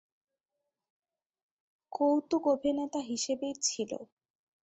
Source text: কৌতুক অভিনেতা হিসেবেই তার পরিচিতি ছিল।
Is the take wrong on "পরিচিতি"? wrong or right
wrong